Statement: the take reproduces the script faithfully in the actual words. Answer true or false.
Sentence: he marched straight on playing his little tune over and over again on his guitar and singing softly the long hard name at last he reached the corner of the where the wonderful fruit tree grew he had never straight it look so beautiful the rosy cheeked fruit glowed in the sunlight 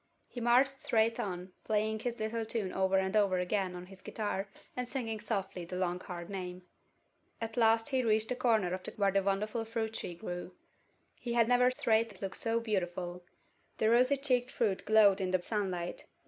true